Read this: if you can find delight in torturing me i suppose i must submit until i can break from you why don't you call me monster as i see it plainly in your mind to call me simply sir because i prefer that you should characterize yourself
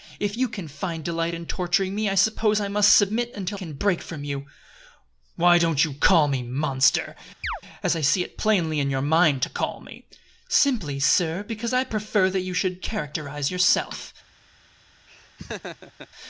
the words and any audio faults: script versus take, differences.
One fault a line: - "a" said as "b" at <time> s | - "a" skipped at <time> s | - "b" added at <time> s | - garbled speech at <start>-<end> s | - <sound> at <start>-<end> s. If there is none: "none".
- "i" skipped at 3.6 s
- chirp at 7.4-7.6 s
- laugh at 15.1-16.1 s